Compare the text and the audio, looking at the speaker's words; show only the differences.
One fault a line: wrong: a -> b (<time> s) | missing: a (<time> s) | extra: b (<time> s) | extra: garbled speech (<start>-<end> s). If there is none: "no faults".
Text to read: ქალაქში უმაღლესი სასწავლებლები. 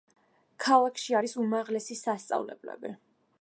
extra: არის (1.2 s)